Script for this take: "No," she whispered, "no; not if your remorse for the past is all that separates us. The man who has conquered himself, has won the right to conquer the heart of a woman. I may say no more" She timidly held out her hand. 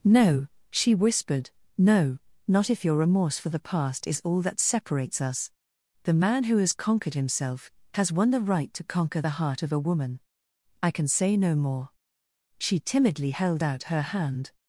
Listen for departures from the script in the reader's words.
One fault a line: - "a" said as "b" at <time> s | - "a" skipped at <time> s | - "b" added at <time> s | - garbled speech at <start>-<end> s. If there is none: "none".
- "may" said as "can" at 10.9 s